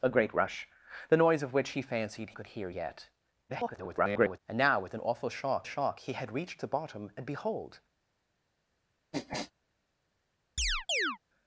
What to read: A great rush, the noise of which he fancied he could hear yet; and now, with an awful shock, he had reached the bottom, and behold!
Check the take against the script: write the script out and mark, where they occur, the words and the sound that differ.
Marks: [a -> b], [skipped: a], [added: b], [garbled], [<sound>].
A great rush, the noise of which he fancied [skipped: he] could hear yet; [garbled] and now, with an awful shock, [added: shock] he had reached the bottom, and behold! [sniff] [chirp]